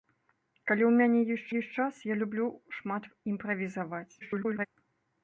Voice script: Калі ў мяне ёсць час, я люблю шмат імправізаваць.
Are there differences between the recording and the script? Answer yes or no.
yes